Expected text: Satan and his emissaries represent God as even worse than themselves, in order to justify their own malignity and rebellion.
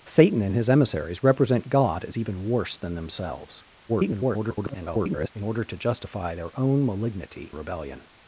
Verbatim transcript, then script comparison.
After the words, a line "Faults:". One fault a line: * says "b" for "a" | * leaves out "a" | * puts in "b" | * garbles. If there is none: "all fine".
Satan and his emissaries represent God as even worse than themselves, [garbled] in order to justify their own malignity rebellion.
Faults:
* garbles
* leaves out "and"